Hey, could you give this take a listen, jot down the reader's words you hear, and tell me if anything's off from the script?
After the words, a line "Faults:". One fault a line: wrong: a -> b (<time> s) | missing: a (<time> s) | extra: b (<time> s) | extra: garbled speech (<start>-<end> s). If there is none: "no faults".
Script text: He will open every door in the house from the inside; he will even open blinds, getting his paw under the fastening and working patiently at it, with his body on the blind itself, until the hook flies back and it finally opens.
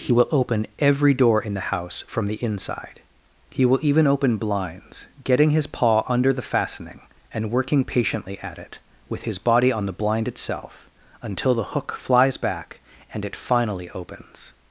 He will open every door in the house from the inside; he will even open blinds, getting his paw under the fastening and working patiently at it, with his body on the blind itself, until the hook flies back and it finally opens.
Faults:
no faults